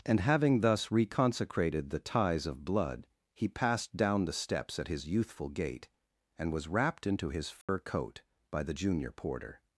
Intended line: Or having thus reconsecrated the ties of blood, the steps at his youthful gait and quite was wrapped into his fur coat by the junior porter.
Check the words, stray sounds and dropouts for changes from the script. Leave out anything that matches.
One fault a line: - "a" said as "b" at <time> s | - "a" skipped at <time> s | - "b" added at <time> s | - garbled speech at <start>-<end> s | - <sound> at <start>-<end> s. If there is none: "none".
- "Or" said as "And" at 0.1 s
- "he passed down" added at 3.4 s
- "quite" skipped at 6.5 s
- dropout at 7.6-7.7 s